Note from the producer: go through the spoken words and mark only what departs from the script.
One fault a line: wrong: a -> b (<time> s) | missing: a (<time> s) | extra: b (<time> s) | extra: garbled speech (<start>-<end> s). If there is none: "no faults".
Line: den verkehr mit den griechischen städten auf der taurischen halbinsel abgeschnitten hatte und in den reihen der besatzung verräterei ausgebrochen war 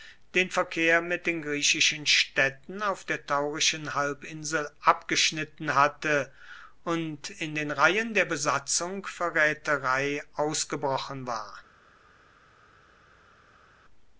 no faults